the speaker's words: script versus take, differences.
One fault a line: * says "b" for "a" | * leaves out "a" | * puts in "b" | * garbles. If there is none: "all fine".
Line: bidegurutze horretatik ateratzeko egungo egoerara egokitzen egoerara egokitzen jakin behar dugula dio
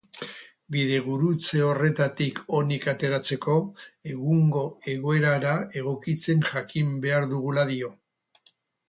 * puts in "onik"
* leaves out "egoerara egokitzen"